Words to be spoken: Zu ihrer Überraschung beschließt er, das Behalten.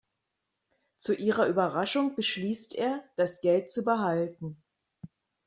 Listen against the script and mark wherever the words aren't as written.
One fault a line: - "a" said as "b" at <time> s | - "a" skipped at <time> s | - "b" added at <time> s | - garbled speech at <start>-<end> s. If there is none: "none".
- "Geld zu" added at 3.4 s